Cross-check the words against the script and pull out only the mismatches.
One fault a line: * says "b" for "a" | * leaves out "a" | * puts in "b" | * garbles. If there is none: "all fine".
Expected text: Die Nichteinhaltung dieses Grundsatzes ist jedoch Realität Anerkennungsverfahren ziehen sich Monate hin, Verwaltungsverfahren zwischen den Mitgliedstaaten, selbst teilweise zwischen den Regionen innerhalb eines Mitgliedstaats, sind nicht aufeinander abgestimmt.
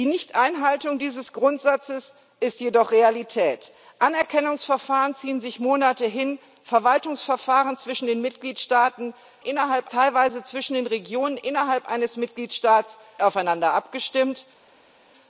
* says "innerhalb" for "selbst"
* leaves out "sind nicht"